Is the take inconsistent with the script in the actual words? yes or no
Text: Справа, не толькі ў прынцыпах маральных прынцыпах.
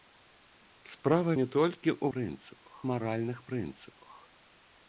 no